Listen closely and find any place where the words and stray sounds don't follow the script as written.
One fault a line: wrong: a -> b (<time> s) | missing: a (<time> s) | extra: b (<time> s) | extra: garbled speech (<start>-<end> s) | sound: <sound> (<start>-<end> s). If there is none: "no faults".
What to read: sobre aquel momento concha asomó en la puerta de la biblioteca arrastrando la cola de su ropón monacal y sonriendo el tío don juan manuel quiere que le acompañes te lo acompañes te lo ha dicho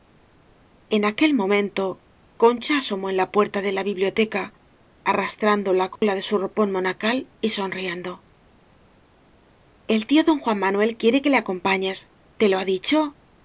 wrong: sobre -> en (0.9 s)
sound: dropout (6.0-6.0 s)
missing: acompañes te lo (12.6 s)